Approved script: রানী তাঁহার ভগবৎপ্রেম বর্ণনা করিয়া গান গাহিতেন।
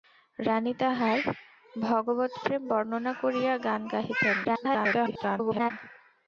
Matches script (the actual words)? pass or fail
fail